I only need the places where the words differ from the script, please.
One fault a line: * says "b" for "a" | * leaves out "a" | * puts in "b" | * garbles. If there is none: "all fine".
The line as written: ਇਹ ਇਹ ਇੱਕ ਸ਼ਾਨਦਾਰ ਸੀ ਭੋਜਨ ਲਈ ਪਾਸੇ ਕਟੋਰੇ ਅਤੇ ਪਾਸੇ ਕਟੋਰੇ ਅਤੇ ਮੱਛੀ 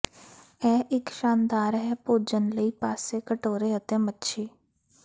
* leaves out "ਇਹ"
* says "ਹੈ" for "ਸੀ"
* leaves out "ਪਾਸੇ ਕਟੋਰੇ ਅਤੇ"